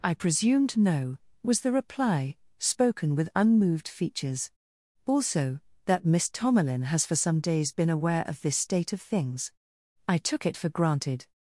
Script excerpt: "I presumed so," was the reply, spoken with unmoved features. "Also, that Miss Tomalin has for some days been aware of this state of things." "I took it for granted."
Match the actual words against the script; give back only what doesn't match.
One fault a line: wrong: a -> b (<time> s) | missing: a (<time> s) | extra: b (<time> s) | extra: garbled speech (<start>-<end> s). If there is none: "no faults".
wrong: so -> no (0.8 s)